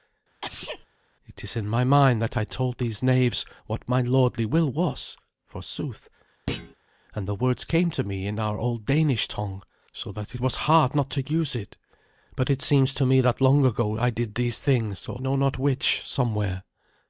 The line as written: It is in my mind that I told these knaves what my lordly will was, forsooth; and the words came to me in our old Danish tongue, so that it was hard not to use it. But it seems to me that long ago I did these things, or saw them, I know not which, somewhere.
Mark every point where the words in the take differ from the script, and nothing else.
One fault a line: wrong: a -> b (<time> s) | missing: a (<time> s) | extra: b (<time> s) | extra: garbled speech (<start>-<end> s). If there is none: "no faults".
missing: it (10.4 s)
missing: saw them I (15.2 s)